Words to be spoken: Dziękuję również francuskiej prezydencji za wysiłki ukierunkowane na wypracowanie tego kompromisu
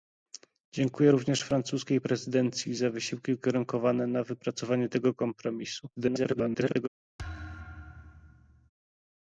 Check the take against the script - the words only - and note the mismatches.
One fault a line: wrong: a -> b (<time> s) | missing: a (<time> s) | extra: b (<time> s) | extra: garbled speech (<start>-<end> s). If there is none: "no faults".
extra: garbled speech (6.0-6.9 s)